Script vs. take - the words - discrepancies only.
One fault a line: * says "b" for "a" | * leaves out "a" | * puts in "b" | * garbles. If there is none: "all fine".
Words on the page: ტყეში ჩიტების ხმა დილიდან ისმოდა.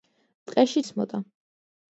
* leaves out "ჩიტების ხმა დილიდან"